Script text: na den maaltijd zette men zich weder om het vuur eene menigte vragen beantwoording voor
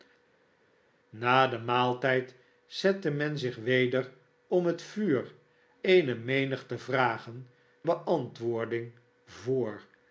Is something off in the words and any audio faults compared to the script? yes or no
no